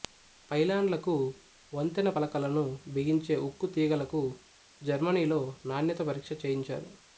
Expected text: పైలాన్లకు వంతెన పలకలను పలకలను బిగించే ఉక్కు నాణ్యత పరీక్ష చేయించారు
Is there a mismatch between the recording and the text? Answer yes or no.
yes